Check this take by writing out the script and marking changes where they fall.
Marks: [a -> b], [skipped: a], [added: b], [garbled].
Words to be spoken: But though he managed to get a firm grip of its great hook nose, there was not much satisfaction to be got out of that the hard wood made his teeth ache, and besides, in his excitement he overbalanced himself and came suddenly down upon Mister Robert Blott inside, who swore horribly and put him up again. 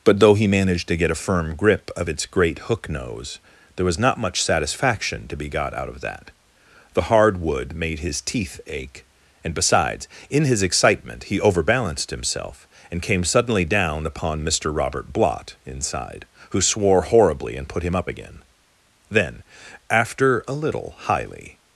But though he managed to get a firm grip of its great hook nose, there was not much satisfaction to be got out of that the hard wood made his teeth ache, and besides, in his excitement he overbalanced himself and came suddenly down upon Mister Robert Blott inside, who swore horribly and put him up again. [added: Then after a little highly]